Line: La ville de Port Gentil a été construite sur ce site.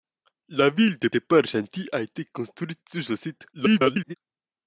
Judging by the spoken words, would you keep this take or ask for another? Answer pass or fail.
fail